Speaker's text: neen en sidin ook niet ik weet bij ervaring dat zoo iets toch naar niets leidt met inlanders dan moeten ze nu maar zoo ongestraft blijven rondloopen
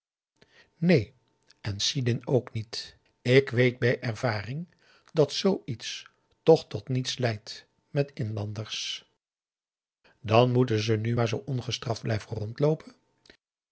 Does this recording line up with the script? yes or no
no